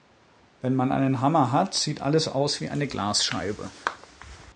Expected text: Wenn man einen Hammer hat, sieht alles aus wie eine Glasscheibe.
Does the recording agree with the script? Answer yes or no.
yes